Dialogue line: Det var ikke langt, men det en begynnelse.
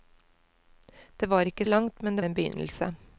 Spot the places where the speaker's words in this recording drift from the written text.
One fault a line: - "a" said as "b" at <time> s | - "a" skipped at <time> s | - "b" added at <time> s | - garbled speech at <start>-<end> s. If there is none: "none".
none